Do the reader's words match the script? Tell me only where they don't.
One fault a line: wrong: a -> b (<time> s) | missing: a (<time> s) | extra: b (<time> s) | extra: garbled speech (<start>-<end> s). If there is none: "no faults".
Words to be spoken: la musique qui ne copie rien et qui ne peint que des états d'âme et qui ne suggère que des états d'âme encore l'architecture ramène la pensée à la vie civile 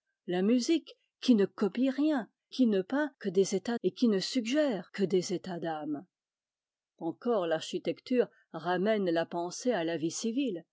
missing: et (2.3 s)
missing: d'âme (3.8 s)